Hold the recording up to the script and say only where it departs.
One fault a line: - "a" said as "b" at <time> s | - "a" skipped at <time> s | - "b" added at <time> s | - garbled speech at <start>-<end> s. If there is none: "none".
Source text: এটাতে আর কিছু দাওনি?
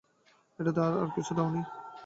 none